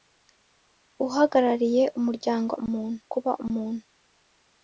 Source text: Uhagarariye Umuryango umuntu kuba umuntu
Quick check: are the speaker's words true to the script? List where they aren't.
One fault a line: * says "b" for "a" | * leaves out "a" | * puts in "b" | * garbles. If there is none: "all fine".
all fine